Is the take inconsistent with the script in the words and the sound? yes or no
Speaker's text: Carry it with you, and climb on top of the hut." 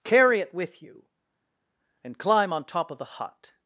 no